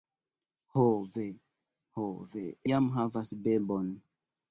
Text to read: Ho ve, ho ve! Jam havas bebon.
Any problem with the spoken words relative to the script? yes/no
no